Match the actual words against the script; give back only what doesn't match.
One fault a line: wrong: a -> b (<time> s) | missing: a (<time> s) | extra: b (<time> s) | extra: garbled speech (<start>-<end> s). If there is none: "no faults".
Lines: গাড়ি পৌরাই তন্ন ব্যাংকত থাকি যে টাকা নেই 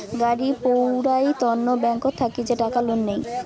extra: লোন (2.9 s)